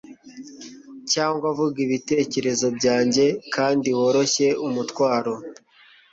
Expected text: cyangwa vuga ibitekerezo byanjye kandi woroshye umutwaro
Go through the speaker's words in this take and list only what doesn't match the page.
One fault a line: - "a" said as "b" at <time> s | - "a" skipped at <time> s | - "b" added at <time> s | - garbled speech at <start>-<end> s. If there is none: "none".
none